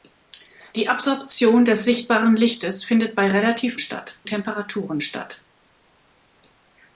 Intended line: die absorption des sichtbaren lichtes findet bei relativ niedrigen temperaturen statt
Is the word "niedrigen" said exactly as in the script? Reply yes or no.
no